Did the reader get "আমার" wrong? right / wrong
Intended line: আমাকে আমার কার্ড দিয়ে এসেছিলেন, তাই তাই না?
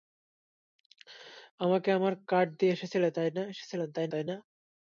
right